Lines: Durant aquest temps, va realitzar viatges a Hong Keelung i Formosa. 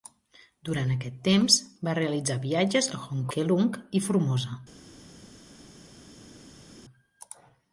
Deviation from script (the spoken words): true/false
false